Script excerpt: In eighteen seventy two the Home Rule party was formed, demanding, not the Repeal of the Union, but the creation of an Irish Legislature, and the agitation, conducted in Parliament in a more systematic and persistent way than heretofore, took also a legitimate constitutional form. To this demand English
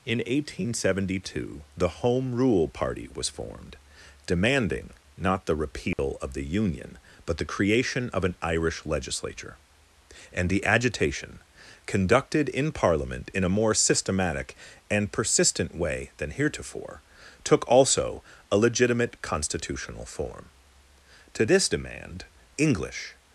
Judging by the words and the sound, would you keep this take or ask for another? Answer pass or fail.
fail